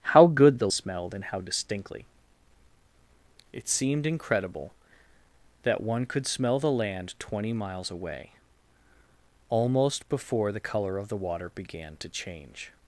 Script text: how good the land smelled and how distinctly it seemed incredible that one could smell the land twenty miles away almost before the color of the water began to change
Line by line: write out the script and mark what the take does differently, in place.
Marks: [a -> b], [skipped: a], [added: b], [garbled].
how good the [skipped: land] smelled and how distinctly it seemed incredible that one could smell the land twenty miles away almost before the color of the water began to change